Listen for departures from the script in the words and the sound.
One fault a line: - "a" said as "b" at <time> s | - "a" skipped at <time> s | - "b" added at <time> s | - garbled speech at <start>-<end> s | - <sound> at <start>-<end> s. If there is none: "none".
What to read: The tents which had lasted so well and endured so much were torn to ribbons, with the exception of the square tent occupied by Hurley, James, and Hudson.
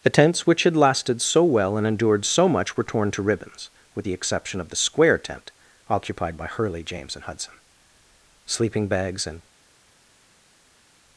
- "Sleeping bags and" added at 8.5 s